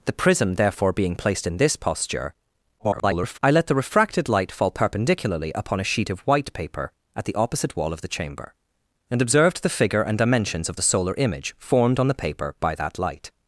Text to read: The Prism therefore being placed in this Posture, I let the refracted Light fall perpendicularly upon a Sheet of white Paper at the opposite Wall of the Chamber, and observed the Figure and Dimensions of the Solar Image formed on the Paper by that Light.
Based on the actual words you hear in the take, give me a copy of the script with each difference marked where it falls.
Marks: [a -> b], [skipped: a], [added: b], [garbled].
The Prism therefore being placed in this Posture, [garbled] I let the refracted Light fall perpendicularly upon a Sheet of white Paper at the opposite Wall of the Chamber, and observed the Figure and Dimensions of the Solar Image formed on the Paper by that Light.